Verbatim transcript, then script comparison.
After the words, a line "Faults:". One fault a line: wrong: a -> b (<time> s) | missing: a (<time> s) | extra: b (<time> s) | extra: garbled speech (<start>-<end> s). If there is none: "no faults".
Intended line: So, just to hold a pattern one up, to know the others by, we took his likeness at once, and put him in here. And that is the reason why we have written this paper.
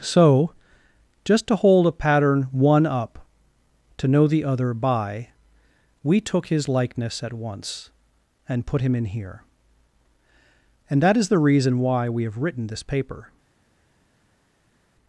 So, just to hold a pattern one up, to know the other by, we took his likeness at once, and put him in here. And that is the reason why we have written this paper.
Faults:
wrong: others -> other (4.4 s)